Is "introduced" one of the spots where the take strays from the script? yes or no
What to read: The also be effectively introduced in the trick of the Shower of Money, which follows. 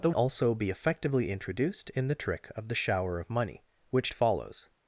no